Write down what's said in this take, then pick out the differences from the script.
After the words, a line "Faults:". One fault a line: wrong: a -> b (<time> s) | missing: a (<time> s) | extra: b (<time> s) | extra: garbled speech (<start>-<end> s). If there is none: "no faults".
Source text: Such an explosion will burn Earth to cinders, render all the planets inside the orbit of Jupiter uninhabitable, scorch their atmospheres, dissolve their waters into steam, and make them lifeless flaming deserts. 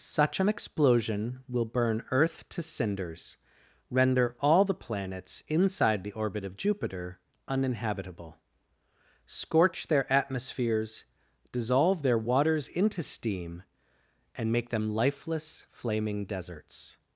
Such an explosion will burn Earth to cinders, render all the planets inside the orbit of Jupiter uninhabitable, scorch their atmospheres, dissolve their waters into steam, and make them lifeless flaming deserts.
Faults:
no faults